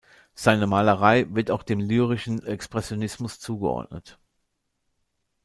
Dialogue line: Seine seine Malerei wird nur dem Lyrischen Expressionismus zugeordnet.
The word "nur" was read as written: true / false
false